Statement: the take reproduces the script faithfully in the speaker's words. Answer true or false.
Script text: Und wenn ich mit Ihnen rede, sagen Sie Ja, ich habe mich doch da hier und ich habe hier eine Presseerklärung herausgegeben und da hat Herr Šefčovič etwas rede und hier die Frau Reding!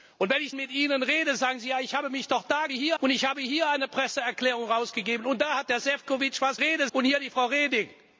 true